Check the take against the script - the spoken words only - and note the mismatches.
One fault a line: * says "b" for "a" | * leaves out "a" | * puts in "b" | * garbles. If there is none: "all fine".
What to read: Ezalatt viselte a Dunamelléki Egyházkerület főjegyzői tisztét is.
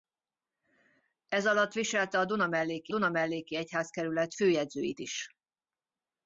* puts in "Dunamelléki"
* leaves out "tisztét"